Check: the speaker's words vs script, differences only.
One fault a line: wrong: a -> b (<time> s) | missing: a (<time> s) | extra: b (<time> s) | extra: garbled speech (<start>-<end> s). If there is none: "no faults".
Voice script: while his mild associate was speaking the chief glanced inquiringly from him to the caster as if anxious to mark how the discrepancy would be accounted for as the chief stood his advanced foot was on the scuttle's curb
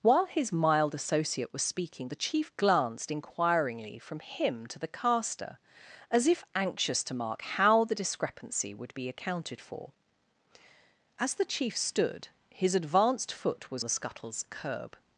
missing: on (13.8 s)